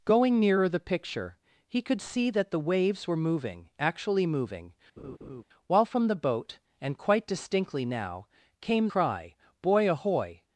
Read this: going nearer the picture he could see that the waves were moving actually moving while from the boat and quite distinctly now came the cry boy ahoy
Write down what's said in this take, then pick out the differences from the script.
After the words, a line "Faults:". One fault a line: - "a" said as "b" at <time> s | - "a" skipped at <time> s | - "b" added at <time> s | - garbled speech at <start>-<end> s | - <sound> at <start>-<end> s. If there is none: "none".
going nearer the picture he could see that the waves were moving actually moving while from the boat and quite distinctly now came cry boy ahoy
Faults:
- laugh at 5.0-5.4 s
- "the" skipped at 8.9 s